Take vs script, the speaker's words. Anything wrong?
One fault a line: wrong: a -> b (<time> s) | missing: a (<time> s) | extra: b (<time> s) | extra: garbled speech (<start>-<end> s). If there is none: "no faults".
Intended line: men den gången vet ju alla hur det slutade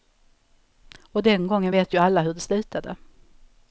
wrong: men -> och (1.1 s)